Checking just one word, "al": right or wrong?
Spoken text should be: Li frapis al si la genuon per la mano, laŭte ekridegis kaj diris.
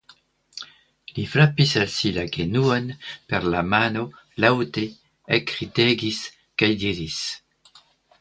right